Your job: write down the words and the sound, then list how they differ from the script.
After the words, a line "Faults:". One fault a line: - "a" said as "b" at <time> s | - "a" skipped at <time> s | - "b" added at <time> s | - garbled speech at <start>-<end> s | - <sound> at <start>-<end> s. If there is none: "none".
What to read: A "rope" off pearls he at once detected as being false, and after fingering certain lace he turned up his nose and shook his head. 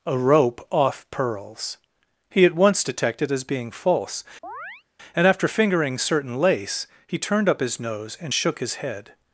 A "rope" off pearls he at once detected as being false, and after fingering certain lace he turned up his nose and shook his head.
Faults:
- chirp at 4.4-4.8 s